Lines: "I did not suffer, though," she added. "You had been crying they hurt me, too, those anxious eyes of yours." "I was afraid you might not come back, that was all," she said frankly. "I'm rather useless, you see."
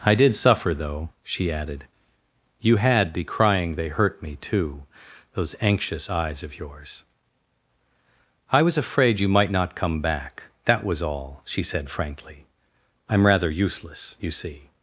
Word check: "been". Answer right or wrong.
wrong